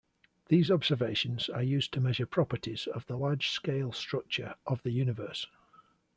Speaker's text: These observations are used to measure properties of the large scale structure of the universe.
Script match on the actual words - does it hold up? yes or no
yes